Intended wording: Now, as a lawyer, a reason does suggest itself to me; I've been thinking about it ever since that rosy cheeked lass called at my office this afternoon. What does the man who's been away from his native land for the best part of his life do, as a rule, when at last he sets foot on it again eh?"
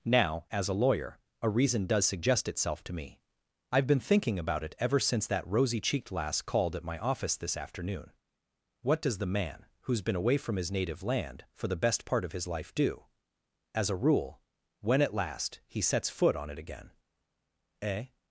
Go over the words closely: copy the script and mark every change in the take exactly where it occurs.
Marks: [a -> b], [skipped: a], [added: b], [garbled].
Now, as a lawyer, a reason does suggest itself to me; I've been thinking about it ever since that rosy cheeked lass called at my office this afternoon. What does the man who's been away from his native land for the best part of his life do, as a rule, when at last he sets foot on it again eh?"